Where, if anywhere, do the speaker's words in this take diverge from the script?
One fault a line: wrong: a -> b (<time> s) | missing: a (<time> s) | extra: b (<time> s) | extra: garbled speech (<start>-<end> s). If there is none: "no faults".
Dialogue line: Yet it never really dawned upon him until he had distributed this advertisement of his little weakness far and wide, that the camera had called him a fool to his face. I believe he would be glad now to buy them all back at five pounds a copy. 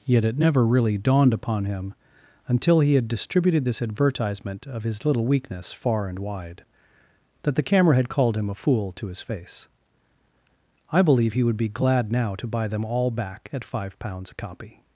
no faults